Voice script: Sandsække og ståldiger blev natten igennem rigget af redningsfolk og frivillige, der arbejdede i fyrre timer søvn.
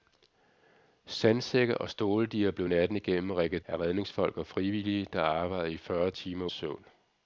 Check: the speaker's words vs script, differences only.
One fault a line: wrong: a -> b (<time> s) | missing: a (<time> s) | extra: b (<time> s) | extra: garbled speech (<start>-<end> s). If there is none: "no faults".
no faults